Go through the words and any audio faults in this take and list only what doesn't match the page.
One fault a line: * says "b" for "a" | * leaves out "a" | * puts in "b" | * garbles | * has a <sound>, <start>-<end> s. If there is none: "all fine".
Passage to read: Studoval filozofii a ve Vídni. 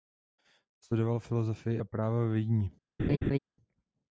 * puts in "práva"
* has a laugh, 3.0-3.4 s